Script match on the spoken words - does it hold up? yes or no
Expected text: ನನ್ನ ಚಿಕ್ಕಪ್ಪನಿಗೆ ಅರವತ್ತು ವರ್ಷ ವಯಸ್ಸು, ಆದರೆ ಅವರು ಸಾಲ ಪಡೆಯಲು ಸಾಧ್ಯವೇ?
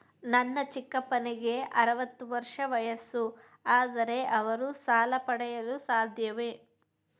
yes